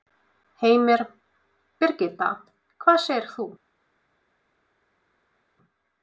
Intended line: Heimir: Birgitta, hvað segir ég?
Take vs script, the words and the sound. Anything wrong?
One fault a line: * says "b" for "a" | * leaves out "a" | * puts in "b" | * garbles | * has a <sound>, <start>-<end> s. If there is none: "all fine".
* says "þú" for "ég"